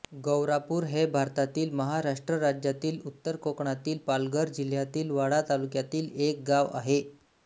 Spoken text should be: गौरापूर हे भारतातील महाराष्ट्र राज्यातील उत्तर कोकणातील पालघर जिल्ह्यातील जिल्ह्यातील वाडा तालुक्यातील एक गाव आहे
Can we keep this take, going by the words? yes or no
no